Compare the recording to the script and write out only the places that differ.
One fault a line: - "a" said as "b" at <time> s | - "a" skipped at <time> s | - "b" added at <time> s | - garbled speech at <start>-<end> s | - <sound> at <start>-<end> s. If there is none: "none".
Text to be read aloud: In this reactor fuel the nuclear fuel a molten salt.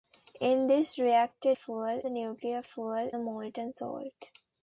none